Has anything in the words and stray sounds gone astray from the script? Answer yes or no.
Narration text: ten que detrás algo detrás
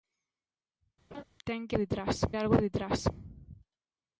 yes